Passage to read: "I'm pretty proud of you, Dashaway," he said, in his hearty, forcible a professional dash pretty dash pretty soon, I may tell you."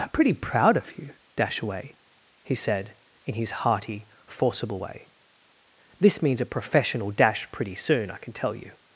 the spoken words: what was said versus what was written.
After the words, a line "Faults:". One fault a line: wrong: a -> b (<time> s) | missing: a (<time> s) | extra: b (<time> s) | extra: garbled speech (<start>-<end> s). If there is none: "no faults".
"I'm pretty proud of you, Dashaway," he said, in his hearty, forcible way. "This means a professional dash pretty soon, I can tell you."
Faults:
extra: way This means (4.8 s)
missing: dash pretty (7.7 s)
wrong: may -> can (8.2 s)